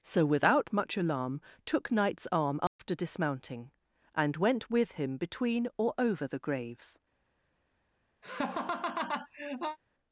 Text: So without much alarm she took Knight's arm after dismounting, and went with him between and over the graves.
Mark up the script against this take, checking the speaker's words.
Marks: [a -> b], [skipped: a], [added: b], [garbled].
So without much alarm [skipped: she] took Knight's arm after dismounting, and went with him between [and -> or] over the graves.